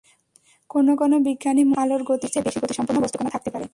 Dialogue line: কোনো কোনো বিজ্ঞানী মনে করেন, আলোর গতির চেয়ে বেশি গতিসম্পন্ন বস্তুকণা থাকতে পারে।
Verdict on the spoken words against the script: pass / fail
pass